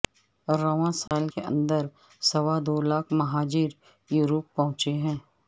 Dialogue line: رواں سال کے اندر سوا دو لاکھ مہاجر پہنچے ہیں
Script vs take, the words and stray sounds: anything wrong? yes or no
yes